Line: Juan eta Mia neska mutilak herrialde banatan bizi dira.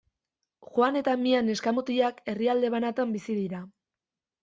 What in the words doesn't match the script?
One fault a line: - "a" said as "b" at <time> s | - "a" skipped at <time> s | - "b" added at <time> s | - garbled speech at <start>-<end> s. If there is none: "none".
none